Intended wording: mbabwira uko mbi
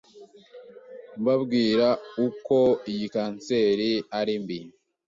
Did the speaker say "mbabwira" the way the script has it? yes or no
yes